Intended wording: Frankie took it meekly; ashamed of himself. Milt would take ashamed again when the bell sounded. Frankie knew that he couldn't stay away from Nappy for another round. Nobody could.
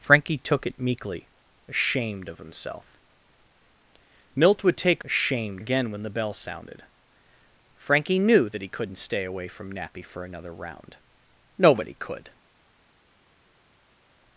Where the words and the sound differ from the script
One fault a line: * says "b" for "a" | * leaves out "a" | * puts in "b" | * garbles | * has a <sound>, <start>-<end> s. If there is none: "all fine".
all fine